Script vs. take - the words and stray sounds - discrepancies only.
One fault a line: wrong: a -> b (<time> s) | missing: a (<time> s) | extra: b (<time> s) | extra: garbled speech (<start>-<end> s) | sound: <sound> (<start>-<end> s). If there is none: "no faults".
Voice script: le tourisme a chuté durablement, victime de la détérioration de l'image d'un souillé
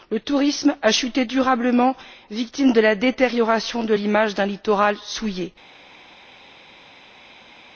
extra: littoral (4.4 s)